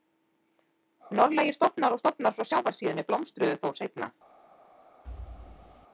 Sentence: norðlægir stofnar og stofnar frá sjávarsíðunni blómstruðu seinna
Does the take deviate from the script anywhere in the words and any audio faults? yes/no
yes